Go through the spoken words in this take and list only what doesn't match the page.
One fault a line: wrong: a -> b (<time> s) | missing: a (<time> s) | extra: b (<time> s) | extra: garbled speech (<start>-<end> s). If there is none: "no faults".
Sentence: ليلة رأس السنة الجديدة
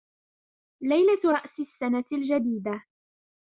no faults